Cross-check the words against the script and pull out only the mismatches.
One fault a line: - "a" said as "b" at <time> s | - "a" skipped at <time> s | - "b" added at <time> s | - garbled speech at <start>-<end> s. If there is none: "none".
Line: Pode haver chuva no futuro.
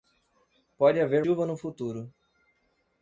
none